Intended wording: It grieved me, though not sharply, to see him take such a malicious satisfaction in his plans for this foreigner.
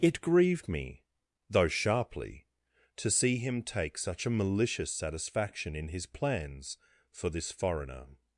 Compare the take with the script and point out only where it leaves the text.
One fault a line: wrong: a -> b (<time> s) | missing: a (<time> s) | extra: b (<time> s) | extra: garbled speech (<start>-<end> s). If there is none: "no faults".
missing: not (1.7 s)